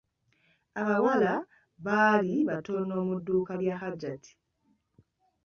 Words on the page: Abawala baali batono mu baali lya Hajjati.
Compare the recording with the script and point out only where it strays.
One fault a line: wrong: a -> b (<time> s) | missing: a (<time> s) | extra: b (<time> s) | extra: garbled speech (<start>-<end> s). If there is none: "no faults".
wrong: baali -> dduuka (3.2 s)